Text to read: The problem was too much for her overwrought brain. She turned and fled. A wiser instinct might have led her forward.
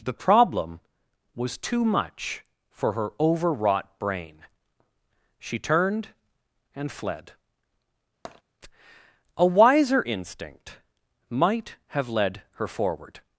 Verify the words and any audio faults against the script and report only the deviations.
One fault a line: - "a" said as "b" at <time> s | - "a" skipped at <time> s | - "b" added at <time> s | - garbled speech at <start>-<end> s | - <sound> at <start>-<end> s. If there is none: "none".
- tap at 8.2-8.4 s